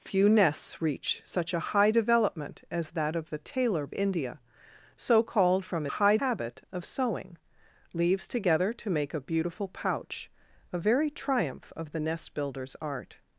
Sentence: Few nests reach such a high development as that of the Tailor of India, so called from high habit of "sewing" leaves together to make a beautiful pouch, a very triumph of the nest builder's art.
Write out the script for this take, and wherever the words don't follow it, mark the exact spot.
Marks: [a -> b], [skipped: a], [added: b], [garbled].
Few nests reach such a high development as that of the Tailor of India, so called from high habit of "sewing" leaves together to make a beautiful pouch, a very triumph of the nest builder's art.